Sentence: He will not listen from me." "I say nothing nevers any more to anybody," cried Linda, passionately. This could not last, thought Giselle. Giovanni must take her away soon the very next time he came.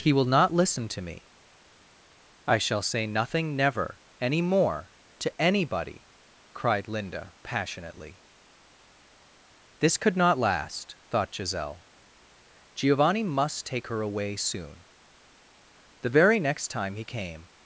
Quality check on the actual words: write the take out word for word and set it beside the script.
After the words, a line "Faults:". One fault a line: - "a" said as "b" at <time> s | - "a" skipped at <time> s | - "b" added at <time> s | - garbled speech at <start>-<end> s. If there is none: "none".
He will not listen to me." "I shall say nothing never any more to anybody," cried Linda, passionately. This could not last, thought Giselle. Giovanni must take her away soon the very next time he came.
Faults:
- "from" said as "to" at 0.9 s
- "shall" added at 2.6 s
- "nevers" said as "never" at 3.5 s